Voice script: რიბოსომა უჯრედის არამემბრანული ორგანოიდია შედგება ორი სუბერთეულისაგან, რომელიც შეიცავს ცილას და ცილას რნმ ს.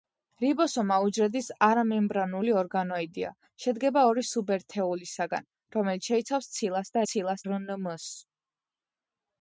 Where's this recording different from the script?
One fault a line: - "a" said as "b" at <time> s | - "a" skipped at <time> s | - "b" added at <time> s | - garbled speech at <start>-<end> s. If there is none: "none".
none